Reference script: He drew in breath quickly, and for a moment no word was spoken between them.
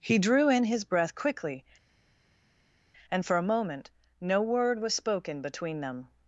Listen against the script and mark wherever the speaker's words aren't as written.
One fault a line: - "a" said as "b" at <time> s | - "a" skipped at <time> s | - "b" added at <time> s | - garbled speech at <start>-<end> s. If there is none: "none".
- "his" added at 0.6 s